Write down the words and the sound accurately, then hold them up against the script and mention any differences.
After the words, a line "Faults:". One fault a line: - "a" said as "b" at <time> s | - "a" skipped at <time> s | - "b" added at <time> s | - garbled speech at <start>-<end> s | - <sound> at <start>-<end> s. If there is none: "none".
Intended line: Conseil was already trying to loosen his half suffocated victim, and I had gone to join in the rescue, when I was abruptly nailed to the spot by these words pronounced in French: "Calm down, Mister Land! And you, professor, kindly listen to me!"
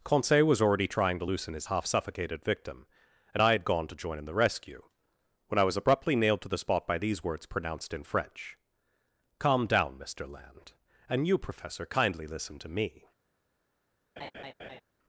Conseil was already trying to loosen his half suffocated victim, and I had gone to join in the rescue, when I was abruptly nailed to the spot by these words pronounced in French: "Calm down, Mister Land! And you, professor, kindly listen to me!"
Faults:
- laugh at 14.2-14.8 s